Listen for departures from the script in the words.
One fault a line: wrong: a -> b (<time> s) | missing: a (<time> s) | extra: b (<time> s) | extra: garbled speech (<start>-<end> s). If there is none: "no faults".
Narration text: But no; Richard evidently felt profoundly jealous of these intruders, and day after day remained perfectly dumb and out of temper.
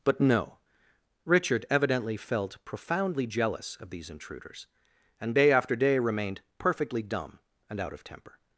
no faults